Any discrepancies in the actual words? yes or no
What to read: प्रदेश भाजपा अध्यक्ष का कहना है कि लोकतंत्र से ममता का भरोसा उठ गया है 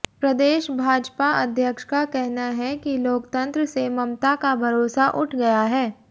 no